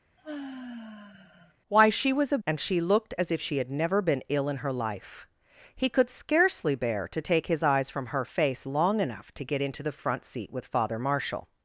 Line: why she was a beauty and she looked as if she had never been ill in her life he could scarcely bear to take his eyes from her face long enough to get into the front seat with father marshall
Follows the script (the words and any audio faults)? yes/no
no